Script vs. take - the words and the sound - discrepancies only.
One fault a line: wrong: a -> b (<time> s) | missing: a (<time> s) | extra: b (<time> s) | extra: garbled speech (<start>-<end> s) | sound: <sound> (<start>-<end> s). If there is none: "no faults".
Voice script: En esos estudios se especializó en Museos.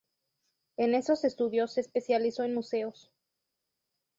no faults